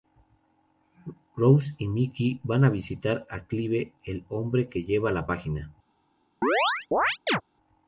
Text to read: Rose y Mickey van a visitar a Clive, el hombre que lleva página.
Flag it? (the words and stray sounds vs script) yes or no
yes